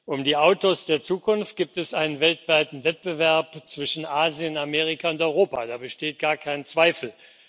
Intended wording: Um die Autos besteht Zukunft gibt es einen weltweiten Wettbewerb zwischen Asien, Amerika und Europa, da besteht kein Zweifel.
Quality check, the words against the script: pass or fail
fail